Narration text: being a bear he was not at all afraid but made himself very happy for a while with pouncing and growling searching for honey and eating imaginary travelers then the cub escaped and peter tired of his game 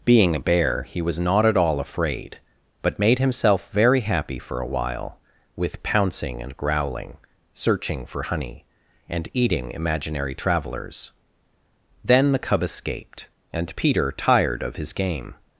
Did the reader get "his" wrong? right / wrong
right